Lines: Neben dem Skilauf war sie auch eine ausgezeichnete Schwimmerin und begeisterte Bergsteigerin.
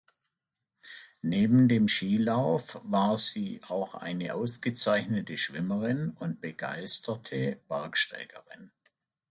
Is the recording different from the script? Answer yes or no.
no